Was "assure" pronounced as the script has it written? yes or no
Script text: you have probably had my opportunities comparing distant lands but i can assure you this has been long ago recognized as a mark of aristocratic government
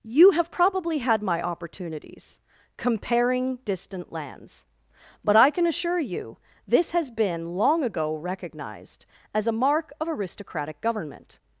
yes